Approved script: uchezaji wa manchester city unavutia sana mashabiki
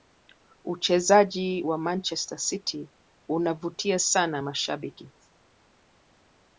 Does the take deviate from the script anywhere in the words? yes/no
no